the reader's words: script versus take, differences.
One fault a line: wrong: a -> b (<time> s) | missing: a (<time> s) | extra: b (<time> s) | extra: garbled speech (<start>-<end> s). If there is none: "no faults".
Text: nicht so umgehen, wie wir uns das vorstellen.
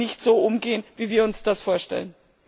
no faults